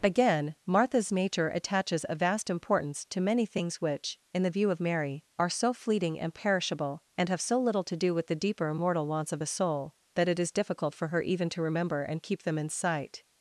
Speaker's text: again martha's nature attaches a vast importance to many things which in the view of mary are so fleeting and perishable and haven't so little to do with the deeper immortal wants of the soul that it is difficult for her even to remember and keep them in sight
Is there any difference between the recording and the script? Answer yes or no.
yes